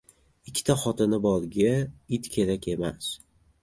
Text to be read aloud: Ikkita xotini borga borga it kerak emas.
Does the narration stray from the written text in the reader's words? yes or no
yes